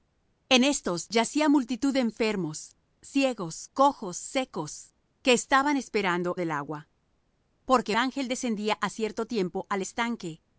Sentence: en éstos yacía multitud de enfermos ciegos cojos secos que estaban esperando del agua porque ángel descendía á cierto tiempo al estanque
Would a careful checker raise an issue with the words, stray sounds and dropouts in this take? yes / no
no